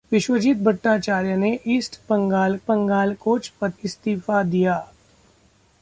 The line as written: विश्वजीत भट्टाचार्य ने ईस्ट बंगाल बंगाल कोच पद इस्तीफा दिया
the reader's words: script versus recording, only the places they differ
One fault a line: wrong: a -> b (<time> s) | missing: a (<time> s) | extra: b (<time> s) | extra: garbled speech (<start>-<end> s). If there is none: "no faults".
no faults